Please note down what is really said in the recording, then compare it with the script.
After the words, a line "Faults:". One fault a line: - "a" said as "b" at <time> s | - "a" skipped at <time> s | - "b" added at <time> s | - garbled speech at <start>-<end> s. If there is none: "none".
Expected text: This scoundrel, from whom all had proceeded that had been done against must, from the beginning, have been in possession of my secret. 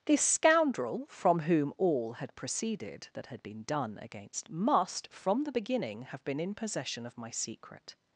This scoundrel, from whom all had proceeded that had been done against must, from the beginning, have been in possession of my secret.
Faults:
none